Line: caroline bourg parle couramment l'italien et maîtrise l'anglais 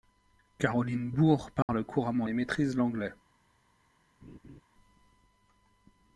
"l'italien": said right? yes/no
no